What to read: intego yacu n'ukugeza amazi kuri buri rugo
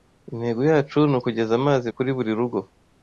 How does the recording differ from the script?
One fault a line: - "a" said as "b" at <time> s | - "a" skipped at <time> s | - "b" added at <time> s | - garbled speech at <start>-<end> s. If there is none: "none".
none